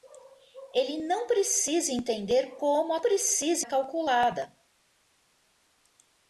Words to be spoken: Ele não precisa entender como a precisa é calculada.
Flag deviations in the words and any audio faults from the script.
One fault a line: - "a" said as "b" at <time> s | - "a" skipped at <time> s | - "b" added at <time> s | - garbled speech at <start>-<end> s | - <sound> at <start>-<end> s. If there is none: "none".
none